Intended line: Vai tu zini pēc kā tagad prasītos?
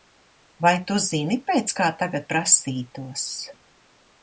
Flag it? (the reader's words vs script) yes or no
no